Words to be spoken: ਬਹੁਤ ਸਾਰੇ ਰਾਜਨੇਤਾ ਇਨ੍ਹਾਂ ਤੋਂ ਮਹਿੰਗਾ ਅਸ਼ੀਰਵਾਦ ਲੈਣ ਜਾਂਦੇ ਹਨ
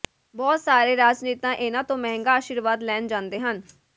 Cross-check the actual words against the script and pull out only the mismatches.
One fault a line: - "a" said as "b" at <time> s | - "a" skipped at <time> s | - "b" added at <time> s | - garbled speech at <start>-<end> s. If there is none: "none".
none